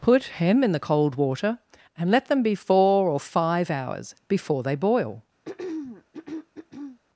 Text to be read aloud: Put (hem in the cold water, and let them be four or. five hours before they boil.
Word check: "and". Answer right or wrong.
right